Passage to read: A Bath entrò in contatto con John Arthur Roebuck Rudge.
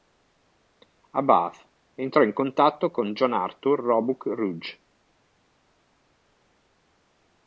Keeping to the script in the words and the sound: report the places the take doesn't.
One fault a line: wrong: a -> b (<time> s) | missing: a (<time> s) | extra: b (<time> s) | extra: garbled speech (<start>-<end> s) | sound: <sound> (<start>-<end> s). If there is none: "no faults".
no faults